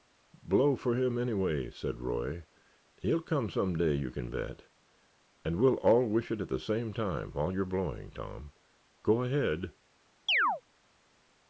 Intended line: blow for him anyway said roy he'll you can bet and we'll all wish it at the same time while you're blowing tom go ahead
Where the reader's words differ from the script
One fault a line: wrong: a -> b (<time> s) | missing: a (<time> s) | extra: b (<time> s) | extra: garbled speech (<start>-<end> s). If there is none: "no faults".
extra: come some day (3.2 s)